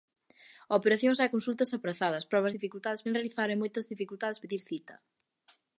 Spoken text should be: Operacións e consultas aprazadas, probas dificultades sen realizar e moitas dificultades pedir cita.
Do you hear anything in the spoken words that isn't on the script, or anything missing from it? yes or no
no